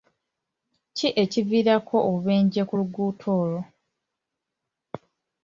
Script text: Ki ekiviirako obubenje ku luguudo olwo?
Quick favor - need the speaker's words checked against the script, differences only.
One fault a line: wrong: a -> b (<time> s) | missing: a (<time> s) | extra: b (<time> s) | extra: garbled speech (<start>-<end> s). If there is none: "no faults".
no faults